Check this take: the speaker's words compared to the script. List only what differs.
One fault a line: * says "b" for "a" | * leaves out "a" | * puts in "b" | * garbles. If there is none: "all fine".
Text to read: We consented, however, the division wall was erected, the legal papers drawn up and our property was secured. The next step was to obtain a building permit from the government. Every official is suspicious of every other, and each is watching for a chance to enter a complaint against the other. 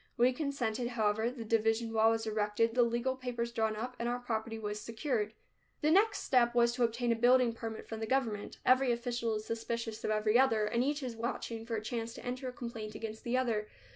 all fine